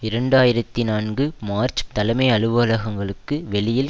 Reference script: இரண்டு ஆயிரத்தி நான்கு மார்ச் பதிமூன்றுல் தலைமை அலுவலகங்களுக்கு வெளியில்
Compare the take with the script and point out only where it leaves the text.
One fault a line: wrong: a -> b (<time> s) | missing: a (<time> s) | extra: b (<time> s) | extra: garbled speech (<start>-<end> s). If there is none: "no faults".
missing: பதிமூன்றுல் (1.8 s)